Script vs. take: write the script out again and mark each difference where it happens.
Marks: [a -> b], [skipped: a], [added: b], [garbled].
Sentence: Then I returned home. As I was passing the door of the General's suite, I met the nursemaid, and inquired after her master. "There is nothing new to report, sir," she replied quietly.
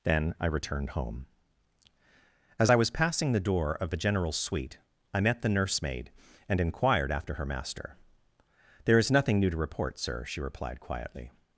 Then I returned home. As I was passing the door of the General's suite, I met the nursemaid, and inquired after her master. "There is nothing new to report, sir," she replied quietly.